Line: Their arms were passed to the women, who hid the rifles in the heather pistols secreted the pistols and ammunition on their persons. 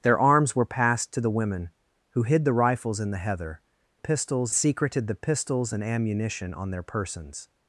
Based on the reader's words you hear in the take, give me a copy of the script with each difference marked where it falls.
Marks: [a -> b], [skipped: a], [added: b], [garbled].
Their arms were passed to the women, who hid the rifles in the heather pistols secreted the pistols and ammunition on their persons.